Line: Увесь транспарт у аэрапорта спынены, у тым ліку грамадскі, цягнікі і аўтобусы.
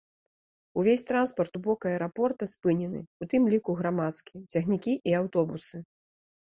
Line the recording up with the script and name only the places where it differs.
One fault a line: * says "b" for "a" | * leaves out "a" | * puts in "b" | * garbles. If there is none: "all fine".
* puts in "бок"